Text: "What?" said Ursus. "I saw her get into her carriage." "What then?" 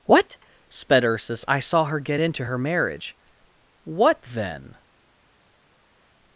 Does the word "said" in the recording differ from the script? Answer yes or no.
yes